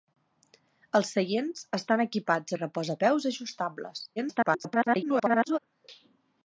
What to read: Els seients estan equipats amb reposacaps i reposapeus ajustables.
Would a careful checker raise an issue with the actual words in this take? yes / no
yes